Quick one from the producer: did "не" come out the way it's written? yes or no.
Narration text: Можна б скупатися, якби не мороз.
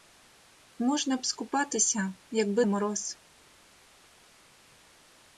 no